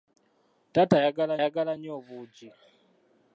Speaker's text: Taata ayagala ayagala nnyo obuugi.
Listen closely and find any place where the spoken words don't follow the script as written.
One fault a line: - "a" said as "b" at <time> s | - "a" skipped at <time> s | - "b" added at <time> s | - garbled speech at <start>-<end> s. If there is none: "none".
none